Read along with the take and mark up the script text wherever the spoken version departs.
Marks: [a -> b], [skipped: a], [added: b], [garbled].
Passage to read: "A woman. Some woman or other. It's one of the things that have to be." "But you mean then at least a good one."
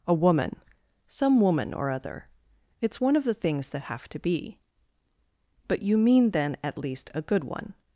"A woman. Some woman or other. It's one of the things that have to be." "But you mean then at least a good one."